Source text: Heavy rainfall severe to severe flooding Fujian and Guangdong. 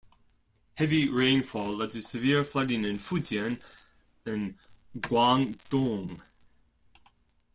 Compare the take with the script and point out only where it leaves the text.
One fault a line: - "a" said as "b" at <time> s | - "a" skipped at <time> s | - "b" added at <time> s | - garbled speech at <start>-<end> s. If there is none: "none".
- "severe" said as "led" at 1.8 s
- "in" added at 2.9 s